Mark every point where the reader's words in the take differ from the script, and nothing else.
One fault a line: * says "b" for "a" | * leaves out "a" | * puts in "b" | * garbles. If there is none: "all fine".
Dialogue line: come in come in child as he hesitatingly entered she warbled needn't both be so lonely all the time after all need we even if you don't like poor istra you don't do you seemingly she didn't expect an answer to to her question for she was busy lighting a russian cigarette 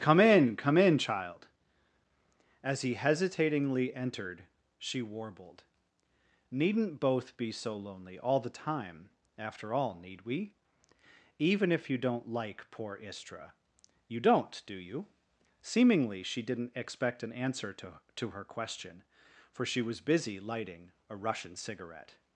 all fine